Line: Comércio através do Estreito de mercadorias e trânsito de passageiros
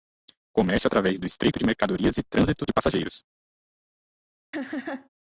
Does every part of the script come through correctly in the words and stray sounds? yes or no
no